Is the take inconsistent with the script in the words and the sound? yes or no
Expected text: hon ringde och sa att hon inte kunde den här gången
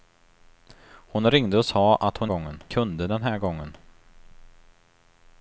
yes